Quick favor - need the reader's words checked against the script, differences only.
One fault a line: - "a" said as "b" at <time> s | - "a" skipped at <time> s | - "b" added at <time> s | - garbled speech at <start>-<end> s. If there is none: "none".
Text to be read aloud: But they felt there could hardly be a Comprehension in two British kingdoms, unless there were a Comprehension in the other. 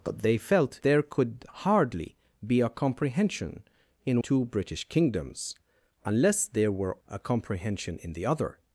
none